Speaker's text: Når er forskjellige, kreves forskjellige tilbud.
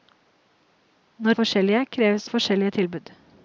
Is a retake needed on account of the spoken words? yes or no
no